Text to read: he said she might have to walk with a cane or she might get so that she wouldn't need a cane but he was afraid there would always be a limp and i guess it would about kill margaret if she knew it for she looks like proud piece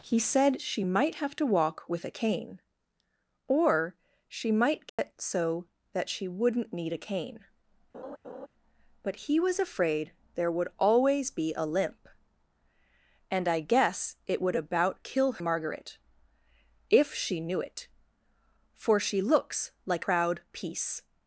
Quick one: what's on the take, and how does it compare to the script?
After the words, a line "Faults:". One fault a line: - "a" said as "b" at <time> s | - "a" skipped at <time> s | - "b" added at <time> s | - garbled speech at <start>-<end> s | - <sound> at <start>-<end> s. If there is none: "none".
he said she might have to walk with a cane or she might get so that she wouldn't need a cane but he was afraid there would always be a limp and i guess it would about kill margaret if she knew it for she looks like proud piece
Faults:
- dropout at 4.9-5.0 s
- laugh at 7.9-8.5 s